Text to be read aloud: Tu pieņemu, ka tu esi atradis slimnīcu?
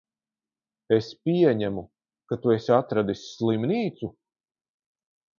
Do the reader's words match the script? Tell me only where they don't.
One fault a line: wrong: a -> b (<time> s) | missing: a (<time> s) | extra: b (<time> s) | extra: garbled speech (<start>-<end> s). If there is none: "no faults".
wrong: Tu -> Es (0.9 s)